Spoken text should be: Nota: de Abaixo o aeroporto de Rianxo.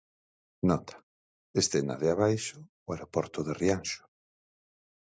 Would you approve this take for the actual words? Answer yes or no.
no